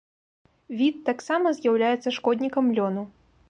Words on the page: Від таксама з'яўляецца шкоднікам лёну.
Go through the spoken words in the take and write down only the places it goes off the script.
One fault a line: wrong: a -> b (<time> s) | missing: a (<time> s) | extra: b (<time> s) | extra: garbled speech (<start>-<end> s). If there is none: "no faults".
no faults